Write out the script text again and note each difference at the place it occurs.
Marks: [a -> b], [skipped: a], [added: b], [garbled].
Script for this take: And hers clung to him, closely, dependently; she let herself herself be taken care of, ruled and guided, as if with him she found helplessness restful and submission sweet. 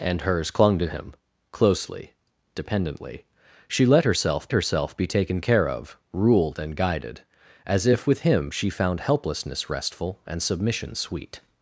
And hers clung to him, closely, dependently; she let herself herself be taken care of, ruled and guided, as if with him she found helplessness restful and submission sweet.